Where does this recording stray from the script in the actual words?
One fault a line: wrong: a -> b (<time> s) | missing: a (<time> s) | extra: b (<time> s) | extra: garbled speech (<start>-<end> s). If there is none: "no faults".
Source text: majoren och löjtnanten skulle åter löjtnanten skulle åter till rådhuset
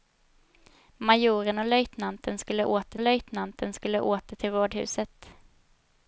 no faults